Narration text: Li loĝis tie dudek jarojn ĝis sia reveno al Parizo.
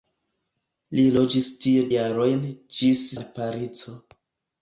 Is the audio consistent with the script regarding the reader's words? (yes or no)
no